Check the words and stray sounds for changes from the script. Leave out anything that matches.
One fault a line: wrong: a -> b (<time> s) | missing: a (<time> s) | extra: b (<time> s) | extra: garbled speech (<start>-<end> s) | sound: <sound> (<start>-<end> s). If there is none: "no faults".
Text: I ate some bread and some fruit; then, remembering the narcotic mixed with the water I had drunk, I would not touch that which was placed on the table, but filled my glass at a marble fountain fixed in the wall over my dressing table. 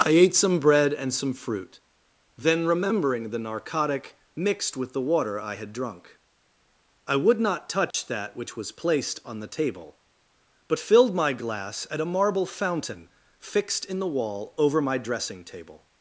sound: dropout (7.9-7.9 s)